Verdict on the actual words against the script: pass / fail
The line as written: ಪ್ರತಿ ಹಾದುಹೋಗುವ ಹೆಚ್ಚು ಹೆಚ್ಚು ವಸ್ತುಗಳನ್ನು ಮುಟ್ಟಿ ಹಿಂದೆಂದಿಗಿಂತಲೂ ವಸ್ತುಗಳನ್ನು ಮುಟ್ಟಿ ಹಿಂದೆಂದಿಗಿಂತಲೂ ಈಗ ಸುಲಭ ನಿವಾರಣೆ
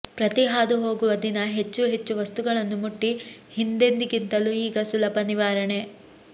fail